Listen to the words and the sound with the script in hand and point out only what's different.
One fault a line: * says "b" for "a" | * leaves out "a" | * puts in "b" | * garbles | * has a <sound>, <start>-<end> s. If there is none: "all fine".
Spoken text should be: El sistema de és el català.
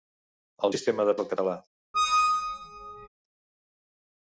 * has a squeak, 1.9-3.1 s